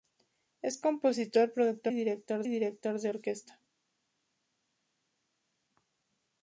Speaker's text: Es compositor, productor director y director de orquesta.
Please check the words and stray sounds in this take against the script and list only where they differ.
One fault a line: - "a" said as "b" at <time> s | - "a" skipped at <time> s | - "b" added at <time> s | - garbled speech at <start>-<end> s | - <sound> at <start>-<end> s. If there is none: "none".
none